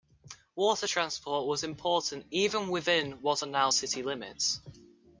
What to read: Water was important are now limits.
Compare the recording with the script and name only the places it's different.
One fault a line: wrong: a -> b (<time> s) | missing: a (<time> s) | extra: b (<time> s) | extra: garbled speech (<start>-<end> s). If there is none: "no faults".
extra: transport (0.8 s)
extra: even within what (2.3 s)
extra: city (3.7 s)